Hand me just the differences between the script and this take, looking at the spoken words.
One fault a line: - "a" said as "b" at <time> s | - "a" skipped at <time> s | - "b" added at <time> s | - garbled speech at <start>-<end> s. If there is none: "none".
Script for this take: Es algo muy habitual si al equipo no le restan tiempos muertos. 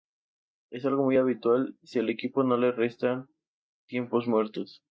none